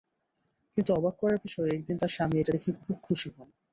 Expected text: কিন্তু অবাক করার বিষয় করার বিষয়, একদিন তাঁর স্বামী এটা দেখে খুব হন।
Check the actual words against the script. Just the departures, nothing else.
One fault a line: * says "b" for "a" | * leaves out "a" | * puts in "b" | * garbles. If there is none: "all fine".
* leaves out "করার বিষয়"
* puts in "খুশি"